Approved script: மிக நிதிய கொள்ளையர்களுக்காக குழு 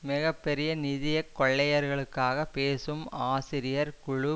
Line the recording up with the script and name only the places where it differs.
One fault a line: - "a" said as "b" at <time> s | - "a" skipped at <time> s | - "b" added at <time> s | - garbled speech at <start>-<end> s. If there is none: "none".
- "பெரிய" added at 0.4 s
- "பேசும் ஆசிரியர்" added at 2.5 s